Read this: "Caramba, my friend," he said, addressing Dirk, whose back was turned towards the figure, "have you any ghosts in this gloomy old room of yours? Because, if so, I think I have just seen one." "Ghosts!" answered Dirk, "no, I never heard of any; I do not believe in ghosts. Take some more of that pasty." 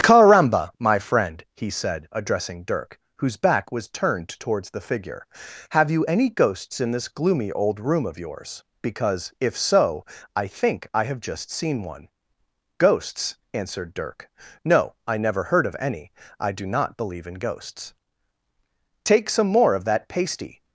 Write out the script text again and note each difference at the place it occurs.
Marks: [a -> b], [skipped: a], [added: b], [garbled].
"Caramba, my friend," he said, addressing Dirk, whose back was turned towards the figure, "have you any ghosts in this gloomy old room of yours? Because, if so, I think I have just seen one." "Ghosts!" answered Dirk, "no, I never heard of any; I do not believe in ghosts. Take some more of that pasty."